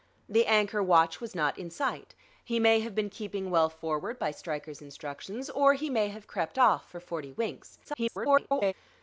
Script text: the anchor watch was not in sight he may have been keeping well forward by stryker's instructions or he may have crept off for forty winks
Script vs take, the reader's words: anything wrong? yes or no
yes